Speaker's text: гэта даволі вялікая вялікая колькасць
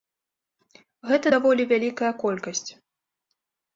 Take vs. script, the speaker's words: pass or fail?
fail